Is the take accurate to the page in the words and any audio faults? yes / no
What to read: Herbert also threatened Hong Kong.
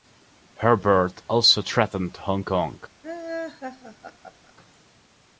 no